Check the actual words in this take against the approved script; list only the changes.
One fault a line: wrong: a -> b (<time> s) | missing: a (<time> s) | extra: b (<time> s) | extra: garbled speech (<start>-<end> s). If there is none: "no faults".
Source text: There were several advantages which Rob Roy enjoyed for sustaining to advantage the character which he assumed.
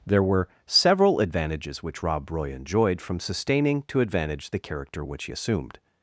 wrong: for -> from (3.0 s)